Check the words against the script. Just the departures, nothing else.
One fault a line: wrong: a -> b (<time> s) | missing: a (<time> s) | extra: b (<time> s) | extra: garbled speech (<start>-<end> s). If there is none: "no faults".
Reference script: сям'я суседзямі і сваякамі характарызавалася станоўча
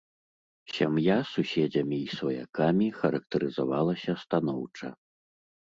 no faults